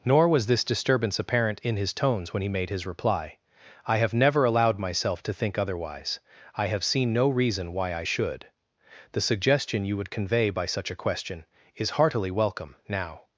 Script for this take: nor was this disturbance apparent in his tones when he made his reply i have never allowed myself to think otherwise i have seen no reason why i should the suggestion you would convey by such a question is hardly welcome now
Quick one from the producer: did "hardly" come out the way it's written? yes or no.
no